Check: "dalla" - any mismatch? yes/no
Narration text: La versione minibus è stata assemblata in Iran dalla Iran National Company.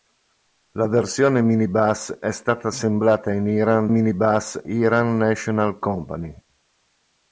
yes